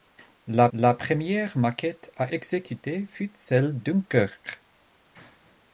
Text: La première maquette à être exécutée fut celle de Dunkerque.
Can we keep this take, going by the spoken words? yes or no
no